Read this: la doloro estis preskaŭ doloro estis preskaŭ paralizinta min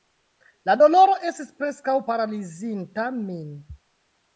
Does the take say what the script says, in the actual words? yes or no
no